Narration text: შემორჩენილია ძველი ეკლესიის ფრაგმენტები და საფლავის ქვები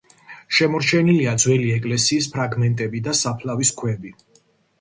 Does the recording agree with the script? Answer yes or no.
yes